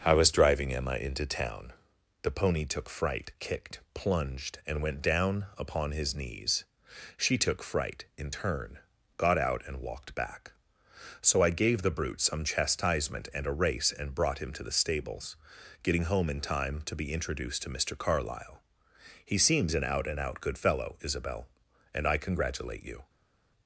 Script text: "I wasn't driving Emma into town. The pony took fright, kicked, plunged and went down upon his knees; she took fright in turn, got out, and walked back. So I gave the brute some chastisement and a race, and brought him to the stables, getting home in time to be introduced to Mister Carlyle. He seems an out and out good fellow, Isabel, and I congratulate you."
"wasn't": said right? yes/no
no